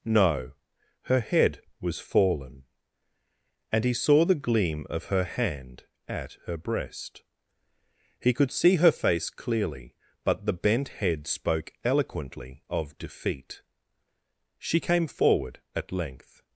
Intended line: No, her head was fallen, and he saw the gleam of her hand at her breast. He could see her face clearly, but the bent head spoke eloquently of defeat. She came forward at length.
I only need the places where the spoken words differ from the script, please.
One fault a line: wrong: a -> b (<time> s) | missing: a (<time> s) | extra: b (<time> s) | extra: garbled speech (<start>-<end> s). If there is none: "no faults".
no faults